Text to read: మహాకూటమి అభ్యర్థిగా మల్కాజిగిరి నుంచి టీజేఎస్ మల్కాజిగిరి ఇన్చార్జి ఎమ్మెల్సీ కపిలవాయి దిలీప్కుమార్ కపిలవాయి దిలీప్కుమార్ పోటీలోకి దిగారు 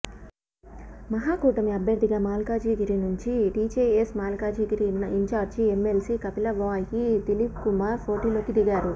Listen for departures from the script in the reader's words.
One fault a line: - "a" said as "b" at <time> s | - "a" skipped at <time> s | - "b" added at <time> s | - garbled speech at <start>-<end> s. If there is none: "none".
- "కపిలవాయి దిలీప్కుమార్" skipped at 8.0 s